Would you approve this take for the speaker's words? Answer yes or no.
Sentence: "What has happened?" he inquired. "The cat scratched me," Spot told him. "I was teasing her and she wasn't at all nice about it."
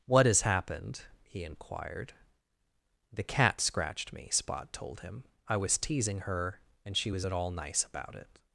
no